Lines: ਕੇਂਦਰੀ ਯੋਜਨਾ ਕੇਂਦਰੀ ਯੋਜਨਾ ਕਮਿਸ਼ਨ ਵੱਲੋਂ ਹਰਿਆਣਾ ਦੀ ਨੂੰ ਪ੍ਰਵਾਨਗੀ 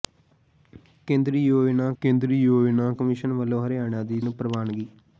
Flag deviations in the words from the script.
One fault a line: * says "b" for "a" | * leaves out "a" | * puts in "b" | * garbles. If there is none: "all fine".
all fine